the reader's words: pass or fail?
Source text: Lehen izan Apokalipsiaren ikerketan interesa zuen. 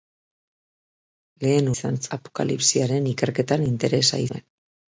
pass